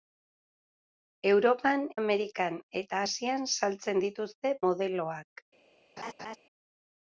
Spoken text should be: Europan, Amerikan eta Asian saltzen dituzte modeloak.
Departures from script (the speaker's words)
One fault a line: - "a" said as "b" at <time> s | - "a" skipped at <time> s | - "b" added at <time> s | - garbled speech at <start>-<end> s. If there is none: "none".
none